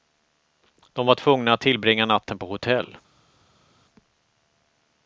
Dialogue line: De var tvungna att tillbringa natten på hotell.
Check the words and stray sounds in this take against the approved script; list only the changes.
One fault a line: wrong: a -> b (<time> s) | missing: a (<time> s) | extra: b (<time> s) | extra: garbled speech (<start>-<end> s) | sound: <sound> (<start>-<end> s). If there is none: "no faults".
no faults